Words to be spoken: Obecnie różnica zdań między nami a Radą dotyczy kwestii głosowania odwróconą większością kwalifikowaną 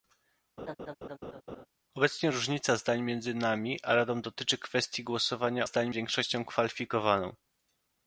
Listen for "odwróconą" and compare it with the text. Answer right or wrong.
wrong